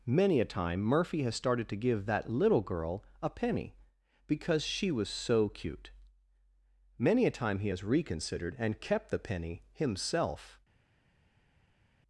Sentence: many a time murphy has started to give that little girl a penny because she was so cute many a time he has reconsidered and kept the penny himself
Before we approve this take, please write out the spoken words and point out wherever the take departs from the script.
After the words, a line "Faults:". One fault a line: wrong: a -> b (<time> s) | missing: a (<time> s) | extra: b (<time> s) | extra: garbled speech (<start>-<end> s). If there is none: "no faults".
many a time murphy has started to give that little girl a penny because she was so cute many a time he has reconsidered and kept the penny himself
Faults:
no faults